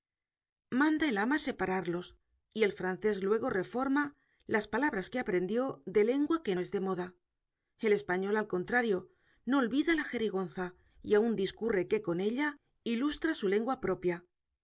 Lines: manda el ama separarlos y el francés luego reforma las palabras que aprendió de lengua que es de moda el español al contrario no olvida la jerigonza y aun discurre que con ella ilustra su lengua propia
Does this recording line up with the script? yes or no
yes